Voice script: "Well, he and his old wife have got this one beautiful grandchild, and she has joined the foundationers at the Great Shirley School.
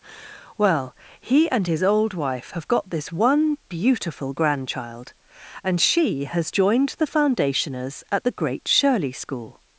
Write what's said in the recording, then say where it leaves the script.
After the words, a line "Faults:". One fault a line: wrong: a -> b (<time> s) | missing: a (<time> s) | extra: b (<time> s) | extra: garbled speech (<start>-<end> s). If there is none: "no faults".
"Well, he and his old wife have got this one beautiful grandchild, and she has joined the foundationers at the Great Shirley School.
Faults:
no faults